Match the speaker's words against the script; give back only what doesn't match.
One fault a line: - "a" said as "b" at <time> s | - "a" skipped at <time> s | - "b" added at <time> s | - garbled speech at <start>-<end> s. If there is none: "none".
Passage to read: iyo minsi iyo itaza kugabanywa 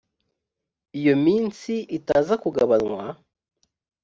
- "iyo" skipped at 1.7 s